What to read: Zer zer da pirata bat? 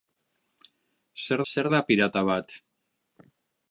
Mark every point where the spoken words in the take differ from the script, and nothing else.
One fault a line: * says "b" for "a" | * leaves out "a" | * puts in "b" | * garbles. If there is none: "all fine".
all fine